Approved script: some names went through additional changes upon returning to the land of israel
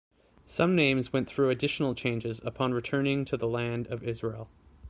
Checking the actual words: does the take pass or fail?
pass